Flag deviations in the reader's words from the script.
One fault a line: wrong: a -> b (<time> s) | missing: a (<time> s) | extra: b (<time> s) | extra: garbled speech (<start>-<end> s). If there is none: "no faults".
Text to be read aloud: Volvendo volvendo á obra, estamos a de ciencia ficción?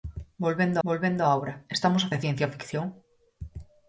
no faults